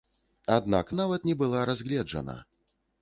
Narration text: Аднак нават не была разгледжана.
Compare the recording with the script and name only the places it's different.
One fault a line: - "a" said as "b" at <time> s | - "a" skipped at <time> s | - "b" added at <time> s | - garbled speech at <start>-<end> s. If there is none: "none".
none